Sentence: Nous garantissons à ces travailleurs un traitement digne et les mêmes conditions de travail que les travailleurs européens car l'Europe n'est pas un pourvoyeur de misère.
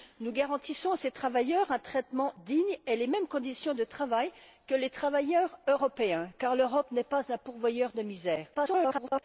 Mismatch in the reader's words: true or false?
true